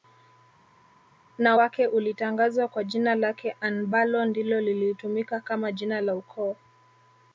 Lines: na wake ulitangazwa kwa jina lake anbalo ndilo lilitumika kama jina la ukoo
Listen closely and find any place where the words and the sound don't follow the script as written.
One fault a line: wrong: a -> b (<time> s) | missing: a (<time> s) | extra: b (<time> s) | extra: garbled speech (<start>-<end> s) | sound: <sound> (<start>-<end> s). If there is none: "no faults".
no faults